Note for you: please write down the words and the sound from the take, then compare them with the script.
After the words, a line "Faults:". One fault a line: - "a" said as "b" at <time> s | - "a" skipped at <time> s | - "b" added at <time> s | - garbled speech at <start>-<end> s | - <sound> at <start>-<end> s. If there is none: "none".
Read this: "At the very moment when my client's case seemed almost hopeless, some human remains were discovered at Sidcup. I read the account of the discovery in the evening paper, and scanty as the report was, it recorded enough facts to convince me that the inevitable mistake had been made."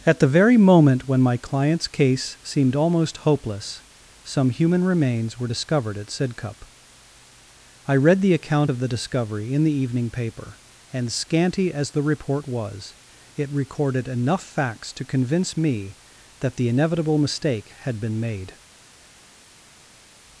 "At the very moment when my client's case seemed almost hopeless, some human remains were discovered at Sidcup. I read the account of the discovery in the evening paper, and scanty as the report was, it recorded enough facts to convince me that the inevitable mistake had been made."
Faults:
none